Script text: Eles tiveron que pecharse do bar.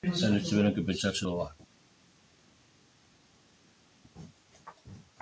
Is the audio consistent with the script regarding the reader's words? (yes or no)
yes